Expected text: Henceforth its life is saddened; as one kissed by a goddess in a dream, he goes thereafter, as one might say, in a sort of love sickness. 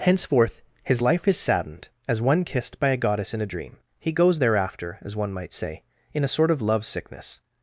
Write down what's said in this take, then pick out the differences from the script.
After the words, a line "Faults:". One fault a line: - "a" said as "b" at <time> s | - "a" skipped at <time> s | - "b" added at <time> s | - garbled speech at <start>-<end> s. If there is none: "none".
Henceforth his life is saddened; as one kissed by a goddess in a dream, he goes thereafter, as one might say, in a sort of love sickness.
Faults:
- "its" said as "his" at 0.8 s